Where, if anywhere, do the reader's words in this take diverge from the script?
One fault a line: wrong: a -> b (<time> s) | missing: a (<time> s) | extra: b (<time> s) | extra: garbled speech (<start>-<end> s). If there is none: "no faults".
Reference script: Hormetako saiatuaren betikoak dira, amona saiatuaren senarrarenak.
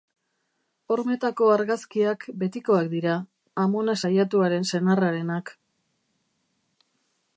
wrong: saiatuaren -> argazkiak (1.6 s)